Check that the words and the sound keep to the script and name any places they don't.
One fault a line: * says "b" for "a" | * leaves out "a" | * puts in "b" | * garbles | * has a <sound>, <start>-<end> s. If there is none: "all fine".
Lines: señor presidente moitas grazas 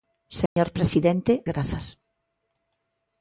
* has a dropout, 0.5-0.6 s
* leaves out "moitas"